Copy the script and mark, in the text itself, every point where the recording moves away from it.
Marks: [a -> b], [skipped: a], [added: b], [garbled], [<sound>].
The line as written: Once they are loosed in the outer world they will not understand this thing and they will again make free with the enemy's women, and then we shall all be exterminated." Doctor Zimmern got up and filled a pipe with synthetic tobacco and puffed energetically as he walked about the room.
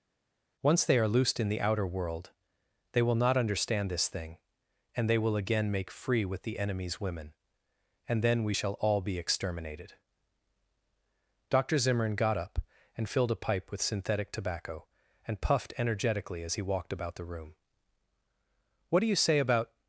Once they are loosed in the outer world they will not understand this thing and they will again make free with the enemy's women, and then we shall all be exterminated." Doctor Zimmern got up and filled a pipe with synthetic tobacco and puffed energetically as he walked about the room. [added: What do you say about]